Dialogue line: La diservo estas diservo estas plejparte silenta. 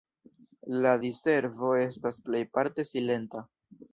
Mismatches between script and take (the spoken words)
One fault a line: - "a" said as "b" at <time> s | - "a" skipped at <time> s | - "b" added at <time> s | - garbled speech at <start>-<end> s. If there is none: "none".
- "diservo estas" skipped at 2.2 s